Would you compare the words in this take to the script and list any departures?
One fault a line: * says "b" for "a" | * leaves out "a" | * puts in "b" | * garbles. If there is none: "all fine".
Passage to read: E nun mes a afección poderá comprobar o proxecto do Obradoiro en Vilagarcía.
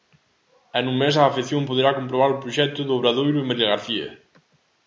all fine